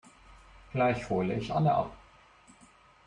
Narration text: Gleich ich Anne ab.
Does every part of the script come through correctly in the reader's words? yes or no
no